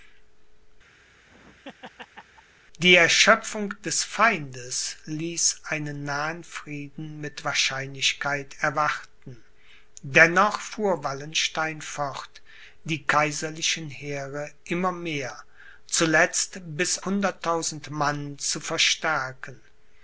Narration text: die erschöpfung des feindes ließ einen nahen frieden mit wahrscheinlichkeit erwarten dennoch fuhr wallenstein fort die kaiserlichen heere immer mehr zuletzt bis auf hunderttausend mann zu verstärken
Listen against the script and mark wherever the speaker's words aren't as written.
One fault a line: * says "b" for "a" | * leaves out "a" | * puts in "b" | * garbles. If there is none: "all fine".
* leaves out "auf"